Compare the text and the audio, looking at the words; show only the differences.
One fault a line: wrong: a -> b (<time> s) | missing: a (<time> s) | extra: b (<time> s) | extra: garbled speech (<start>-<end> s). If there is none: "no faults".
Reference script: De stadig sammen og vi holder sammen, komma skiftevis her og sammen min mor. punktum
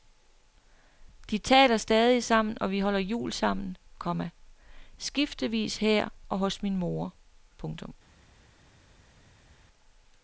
extra: taler (1.4 s)
extra: jul (3.0 s)
wrong: sammen -> hos (6.4 s)